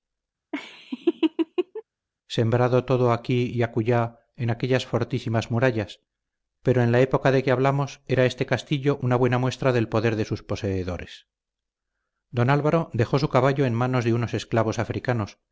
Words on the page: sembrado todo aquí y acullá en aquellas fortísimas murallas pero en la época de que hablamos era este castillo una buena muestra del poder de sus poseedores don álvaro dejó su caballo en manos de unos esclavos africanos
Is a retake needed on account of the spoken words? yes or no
no